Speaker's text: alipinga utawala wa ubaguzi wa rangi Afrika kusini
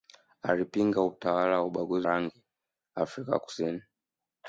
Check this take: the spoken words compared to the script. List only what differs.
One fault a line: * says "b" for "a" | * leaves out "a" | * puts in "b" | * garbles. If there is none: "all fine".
* leaves out "wa"